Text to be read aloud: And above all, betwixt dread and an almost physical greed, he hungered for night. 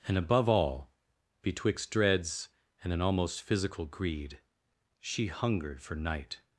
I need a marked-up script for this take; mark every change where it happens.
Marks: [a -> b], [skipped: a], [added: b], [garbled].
And above all, betwixt [dread -> dreads] and an almost physical greed, [he -> she] hungered for night.